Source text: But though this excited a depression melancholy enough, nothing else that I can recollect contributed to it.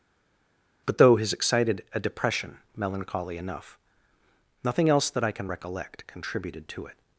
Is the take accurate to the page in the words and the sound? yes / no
no